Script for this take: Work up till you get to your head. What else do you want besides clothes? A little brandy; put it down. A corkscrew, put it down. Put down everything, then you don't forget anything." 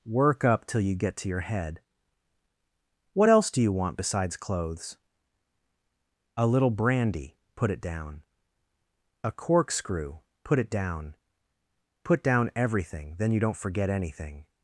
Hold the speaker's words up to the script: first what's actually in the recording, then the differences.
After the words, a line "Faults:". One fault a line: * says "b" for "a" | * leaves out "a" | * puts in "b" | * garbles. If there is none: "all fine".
Work up till you get to your head. What else do you want besides clothes? A little brandy; put it down. A corkscrew, put it down. Put down everything, then you don't forget anything."
Faults:
all fine